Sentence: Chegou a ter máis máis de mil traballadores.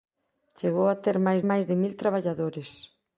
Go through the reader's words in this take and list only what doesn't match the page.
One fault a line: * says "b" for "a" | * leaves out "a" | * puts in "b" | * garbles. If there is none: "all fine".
all fine